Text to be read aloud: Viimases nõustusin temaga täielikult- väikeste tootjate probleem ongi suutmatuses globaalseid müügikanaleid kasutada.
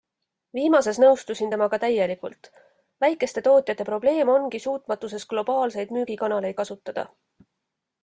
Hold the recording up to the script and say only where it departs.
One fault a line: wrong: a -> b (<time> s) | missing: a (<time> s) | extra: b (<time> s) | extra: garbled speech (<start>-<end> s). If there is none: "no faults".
no faults